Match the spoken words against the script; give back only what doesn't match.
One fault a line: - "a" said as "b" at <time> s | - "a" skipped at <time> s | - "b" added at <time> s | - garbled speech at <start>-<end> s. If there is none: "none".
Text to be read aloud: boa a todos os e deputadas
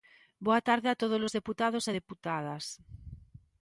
- "tarde" added at 0.7 s
- "deputados" added at 1.4 s